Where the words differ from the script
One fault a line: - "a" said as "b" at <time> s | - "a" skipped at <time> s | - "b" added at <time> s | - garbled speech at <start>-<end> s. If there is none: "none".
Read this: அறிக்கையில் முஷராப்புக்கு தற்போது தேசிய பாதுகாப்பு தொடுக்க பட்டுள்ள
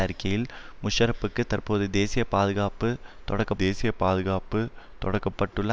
- "தேசிய பாதுகாப்பு தொடுக்க" added at 3.5 s